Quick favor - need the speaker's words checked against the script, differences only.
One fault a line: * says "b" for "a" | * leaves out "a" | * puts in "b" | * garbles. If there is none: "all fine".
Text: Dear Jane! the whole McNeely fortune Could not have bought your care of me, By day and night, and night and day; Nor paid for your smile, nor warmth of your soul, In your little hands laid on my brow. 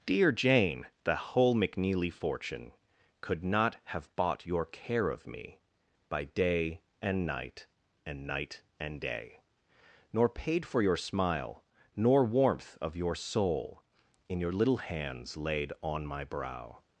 all fine